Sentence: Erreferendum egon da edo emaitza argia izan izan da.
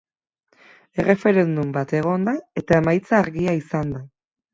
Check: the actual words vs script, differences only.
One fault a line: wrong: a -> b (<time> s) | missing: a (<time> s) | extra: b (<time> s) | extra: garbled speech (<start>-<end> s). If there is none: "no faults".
extra: bat (1.8 s)
wrong: edo -> eta (2.6 s)
missing: izan (3.9 s)